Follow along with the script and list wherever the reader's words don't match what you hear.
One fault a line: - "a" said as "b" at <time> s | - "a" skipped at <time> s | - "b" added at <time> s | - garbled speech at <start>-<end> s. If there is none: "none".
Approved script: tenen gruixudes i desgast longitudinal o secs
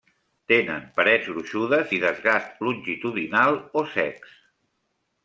- "parets" added at 0.9 s